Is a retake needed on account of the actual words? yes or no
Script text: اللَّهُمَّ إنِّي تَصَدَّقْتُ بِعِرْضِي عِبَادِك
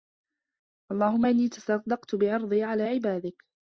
yes